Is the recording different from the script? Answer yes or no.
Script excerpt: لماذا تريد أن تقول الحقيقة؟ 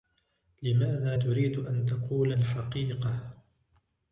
no